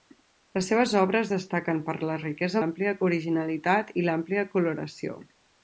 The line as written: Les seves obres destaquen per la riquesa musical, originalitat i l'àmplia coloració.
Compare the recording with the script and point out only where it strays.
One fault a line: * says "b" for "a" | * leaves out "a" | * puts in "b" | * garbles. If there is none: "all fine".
* says "l'àmplia" for "musical"